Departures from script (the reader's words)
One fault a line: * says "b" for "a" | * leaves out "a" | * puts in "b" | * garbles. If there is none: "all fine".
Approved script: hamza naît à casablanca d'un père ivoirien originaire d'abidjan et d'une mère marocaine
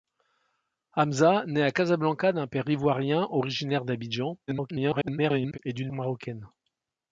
* garbles
* leaves out "mère"